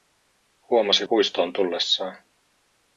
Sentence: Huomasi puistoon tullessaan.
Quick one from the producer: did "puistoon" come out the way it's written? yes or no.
yes